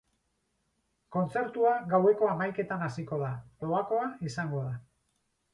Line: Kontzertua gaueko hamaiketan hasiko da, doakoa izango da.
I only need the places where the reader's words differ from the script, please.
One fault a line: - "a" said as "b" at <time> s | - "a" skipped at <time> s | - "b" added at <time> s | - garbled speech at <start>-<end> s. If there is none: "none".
none